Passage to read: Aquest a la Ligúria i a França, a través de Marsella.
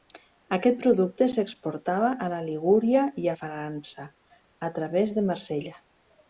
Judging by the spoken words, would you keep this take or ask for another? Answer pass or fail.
fail